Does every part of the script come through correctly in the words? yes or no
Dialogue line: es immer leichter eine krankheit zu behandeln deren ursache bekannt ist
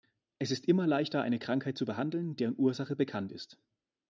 no